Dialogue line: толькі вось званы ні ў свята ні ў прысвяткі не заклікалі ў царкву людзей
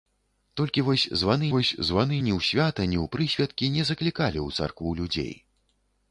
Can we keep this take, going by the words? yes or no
no